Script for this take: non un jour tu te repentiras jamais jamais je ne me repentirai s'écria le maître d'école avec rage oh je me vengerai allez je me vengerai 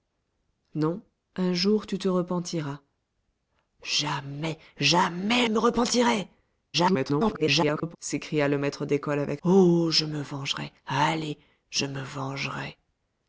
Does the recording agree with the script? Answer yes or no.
no